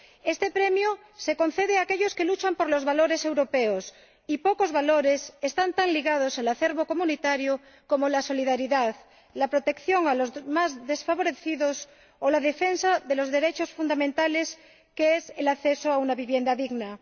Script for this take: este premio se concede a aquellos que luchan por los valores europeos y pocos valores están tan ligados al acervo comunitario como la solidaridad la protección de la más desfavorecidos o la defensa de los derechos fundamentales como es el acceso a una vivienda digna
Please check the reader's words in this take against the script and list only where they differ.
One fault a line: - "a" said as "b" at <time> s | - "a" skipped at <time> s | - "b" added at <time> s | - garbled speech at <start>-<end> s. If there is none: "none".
- "la" said as "los" at 10.1 s